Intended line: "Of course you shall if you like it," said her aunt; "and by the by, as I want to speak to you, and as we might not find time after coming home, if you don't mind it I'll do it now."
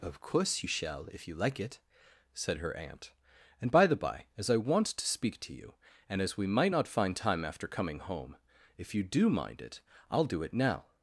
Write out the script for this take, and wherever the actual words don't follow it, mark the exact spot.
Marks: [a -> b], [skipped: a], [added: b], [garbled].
"Of course you shall if you like it," said her aunt; "and by the by, as I want to speak to you, and as we might not find time after coming home, if you [don't -> do] mind it I'll do it now."